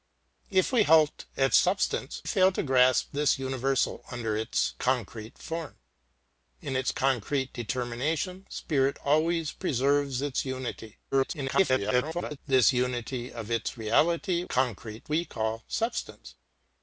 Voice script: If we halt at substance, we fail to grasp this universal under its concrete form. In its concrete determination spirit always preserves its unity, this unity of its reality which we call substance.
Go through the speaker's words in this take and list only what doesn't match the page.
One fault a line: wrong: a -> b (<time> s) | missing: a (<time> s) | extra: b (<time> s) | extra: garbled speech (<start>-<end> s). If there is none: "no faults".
missing: we (2.2 s)
extra: garbled speech (11.1-12.4 s)
wrong: which -> concrete (14.5 s)